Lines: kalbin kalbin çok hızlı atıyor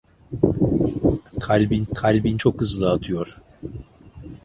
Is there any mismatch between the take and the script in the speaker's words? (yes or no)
no